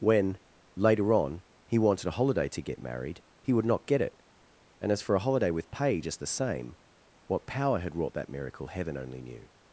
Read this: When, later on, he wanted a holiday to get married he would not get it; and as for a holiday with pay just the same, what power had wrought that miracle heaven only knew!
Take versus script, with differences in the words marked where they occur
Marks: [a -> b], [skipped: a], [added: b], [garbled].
When, later on, he wanted a holiday to get married he would not get it; and as for a holiday with pay just the same, what power had wrought that miracle heaven only knew!